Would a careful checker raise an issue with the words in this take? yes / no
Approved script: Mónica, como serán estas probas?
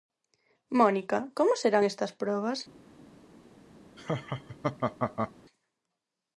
no